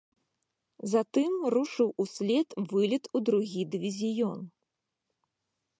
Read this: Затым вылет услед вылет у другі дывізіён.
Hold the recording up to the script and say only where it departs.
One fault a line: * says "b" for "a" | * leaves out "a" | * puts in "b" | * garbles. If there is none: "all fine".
* says "рушыў" for "вылет"